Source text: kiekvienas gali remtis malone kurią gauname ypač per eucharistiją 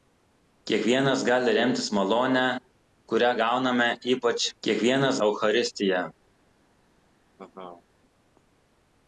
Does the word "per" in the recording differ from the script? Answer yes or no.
yes